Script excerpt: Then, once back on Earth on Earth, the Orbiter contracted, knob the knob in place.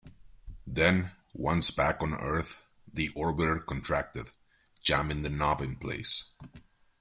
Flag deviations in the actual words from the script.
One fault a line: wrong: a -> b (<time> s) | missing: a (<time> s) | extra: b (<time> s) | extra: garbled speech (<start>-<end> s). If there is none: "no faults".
missing: on Earth (2.6 s)
wrong: knob -> jamming (4.8 s)